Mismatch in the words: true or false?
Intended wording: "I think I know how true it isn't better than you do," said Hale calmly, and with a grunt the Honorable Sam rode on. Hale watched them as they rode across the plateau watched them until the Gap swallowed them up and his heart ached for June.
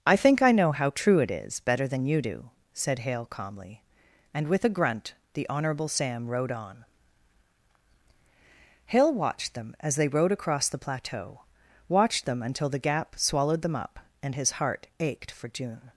true